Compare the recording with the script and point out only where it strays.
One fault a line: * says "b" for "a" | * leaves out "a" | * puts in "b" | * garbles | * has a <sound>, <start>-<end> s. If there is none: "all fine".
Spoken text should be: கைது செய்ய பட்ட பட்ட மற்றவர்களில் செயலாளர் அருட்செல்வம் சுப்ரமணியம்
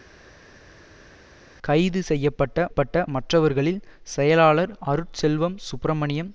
all fine